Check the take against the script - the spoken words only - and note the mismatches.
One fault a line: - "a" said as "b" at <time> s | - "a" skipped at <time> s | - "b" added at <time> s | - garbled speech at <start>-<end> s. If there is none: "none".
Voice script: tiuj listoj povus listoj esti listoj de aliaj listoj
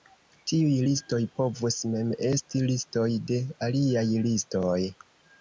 - "listoj" said as "mem" at 1.9 s